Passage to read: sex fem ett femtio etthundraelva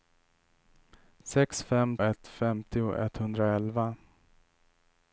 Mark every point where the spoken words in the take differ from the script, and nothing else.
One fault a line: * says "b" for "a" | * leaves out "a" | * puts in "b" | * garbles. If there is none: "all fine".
all fine